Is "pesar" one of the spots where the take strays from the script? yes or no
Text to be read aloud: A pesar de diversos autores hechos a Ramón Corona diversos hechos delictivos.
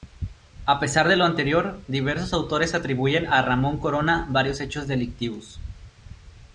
no